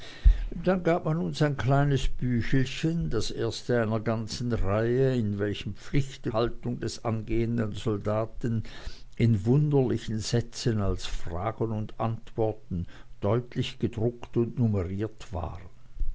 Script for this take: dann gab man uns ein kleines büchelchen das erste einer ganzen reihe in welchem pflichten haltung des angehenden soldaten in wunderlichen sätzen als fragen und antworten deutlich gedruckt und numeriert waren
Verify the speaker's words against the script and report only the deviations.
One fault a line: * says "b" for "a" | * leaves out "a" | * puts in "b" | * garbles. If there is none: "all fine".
all fine